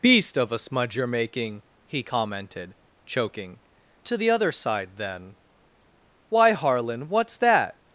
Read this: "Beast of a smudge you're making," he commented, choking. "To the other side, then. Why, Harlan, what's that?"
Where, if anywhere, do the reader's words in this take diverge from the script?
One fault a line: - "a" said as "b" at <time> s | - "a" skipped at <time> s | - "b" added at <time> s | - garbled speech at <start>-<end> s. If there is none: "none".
none